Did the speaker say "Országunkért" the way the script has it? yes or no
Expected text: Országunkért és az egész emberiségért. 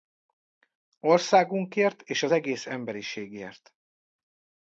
yes